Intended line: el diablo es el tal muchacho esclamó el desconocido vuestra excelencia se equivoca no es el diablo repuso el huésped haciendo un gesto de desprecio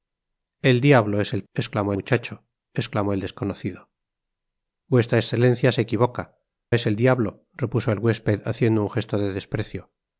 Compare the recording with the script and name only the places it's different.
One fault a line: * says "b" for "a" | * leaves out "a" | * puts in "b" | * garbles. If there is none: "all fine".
* says "esclamó" for "tal"
* leaves out "no"